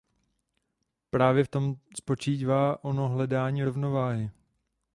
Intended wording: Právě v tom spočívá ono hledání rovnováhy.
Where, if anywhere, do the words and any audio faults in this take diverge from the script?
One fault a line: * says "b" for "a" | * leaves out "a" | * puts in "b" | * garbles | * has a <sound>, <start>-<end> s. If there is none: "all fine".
all fine